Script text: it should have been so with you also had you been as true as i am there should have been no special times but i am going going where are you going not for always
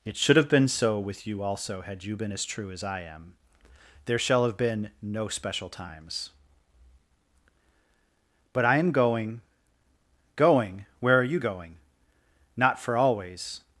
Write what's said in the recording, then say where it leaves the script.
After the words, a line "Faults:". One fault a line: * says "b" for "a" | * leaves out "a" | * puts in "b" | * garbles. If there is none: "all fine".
it should have been so with you also had you been as true as i am there shall have been no special times but i am going going where are you going not for always
Faults:
* says "shall" for "should"